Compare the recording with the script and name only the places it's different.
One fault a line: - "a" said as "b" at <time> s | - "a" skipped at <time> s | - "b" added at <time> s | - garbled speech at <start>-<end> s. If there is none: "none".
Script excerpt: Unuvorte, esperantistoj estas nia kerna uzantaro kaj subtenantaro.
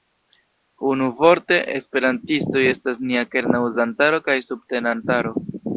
none